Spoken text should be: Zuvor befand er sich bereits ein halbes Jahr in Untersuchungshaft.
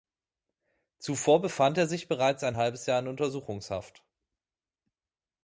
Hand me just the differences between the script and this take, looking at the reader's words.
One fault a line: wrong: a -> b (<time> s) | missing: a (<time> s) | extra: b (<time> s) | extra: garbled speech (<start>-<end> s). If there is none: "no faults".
no faults